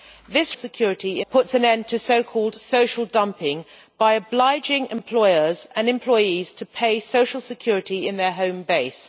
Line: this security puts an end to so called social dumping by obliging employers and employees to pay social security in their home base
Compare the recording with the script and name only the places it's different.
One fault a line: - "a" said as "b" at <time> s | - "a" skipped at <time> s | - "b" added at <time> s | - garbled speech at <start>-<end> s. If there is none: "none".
none